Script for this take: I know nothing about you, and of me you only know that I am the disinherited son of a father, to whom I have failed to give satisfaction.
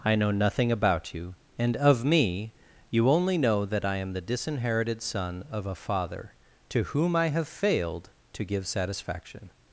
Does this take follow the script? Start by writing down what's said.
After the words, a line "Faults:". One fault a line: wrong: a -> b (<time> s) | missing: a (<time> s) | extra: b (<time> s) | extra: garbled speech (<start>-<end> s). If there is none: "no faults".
I know nothing about you, and of me you only know that I am the disinherited son of a father, to whom I have failed to give satisfaction.
Faults:
no faults